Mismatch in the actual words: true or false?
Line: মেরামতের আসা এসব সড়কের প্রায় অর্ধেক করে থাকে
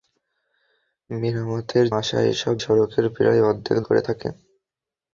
false